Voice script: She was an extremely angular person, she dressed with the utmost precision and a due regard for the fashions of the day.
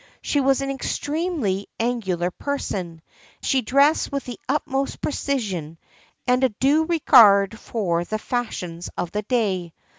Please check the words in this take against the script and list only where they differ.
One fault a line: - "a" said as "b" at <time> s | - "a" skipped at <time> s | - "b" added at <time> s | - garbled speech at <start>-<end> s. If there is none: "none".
none